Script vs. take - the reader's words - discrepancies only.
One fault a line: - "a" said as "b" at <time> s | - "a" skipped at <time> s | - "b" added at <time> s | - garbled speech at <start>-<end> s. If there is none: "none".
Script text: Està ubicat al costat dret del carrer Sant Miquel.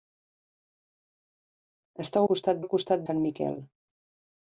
- "ubicat" said as "costat" at 2.3 s
- "dret del carrer" skipped at 3.1 s